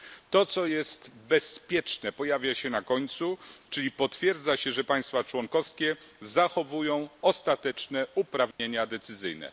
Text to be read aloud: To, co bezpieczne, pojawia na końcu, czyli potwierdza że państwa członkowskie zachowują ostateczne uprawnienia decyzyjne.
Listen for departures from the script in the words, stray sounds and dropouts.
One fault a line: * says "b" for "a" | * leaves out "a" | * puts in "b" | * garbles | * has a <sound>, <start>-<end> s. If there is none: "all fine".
* puts in "jest"
* puts in "się"
* puts in "się"
* has a dropout, 8.5-8.6 s